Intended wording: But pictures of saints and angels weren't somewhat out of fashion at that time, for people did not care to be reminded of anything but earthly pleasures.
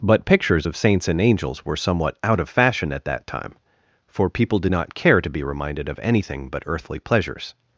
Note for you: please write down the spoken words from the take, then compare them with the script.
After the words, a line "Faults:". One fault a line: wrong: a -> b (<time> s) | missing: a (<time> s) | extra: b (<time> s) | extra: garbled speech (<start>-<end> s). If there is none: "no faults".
But pictures of saints and angels were somewhat out of fashion at that time, for people did not care to be reminded of anything but earthly pleasures.
Faults:
wrong: weren't -> were (1.6 s)